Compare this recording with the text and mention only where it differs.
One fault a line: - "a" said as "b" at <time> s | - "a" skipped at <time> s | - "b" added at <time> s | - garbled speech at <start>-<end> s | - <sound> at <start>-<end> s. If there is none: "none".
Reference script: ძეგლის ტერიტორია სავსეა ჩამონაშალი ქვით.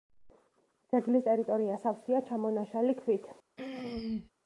- throat clearing at 3.6-4.3 s